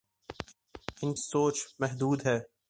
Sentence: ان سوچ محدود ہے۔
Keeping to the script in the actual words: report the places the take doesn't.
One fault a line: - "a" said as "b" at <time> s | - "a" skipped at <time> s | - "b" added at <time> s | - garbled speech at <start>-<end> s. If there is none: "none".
none